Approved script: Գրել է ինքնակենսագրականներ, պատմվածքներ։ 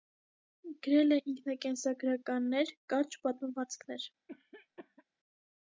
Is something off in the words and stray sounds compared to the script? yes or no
yes